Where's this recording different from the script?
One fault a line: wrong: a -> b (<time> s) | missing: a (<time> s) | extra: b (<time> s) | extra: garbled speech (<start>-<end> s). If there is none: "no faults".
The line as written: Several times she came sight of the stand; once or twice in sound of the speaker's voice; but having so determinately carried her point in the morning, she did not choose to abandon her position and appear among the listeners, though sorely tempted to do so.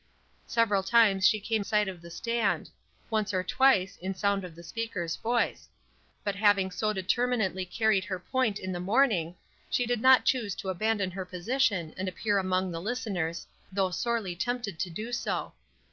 no faults